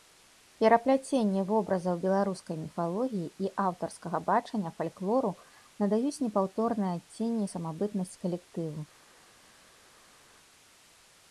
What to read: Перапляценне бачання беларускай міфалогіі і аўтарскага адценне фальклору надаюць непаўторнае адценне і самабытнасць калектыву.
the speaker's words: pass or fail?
fail